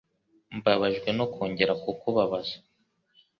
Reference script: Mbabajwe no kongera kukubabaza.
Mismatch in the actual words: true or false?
false